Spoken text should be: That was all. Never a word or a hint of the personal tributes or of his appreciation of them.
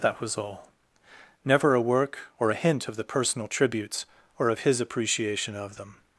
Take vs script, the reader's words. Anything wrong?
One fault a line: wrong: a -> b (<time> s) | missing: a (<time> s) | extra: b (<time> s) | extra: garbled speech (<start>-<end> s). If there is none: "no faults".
wrong: word -> work (1.8 s)